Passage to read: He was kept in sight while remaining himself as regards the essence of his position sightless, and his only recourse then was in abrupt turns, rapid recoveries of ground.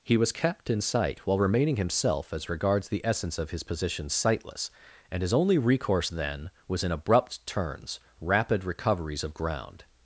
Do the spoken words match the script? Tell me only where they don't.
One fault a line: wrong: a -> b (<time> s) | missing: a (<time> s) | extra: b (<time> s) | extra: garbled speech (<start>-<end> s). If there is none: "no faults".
no faults